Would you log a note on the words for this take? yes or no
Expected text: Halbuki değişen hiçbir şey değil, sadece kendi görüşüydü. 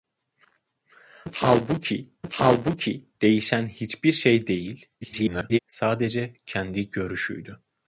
yes